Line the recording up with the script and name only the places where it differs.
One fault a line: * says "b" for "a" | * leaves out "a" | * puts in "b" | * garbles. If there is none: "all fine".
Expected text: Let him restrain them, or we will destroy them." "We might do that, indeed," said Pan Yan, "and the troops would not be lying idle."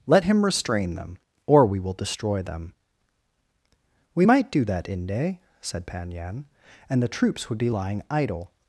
* says "inde" for "indeed"
* leaves out "not"